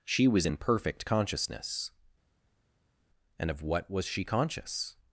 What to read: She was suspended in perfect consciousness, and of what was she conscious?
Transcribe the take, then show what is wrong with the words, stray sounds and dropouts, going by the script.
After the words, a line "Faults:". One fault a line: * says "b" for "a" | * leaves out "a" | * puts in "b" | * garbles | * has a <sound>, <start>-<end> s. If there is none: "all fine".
She was in perfect consciousness, and of what was she conscious?
Faults:
* leaves out "suspended"